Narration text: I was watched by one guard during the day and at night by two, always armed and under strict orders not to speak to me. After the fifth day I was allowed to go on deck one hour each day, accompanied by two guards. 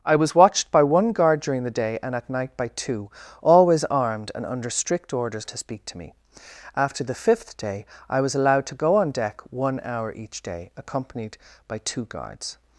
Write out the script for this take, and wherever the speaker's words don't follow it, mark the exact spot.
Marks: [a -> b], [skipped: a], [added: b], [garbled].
I was watched by one guard during the day and at night by two, always armed and under strict orders [skipped: not] to speak to me. After the fifth day I was allowed to go on deck one hour each day, accompanied by two guards.